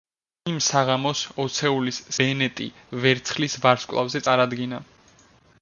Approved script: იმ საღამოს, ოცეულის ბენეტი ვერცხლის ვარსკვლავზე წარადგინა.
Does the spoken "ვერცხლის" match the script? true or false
true